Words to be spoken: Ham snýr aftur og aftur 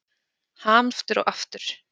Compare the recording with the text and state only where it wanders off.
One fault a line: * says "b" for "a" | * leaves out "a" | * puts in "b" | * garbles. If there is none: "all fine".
* leaves out "snýr"